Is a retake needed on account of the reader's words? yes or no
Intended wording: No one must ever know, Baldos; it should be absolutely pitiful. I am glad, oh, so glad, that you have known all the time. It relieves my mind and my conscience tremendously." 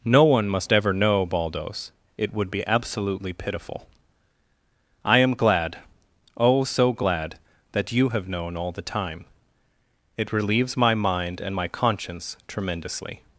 yes